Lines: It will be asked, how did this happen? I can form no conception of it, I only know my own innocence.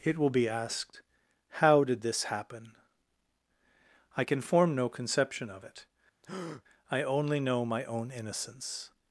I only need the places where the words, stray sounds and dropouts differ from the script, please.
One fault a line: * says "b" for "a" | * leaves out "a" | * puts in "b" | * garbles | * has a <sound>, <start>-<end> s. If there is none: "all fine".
* has a breath, 6.2-6.6 s